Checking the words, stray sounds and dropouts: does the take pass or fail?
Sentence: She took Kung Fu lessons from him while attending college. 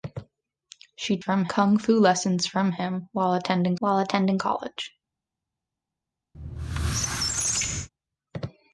fail